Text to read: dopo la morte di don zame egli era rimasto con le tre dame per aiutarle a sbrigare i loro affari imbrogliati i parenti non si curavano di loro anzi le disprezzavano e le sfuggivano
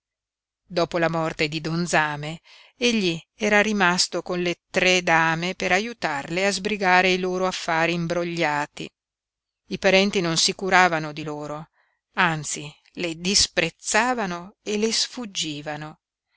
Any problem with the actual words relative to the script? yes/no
no